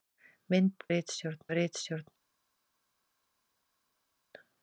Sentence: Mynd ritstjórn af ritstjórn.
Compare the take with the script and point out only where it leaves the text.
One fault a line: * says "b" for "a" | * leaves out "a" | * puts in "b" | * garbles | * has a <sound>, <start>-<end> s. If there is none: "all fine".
all fine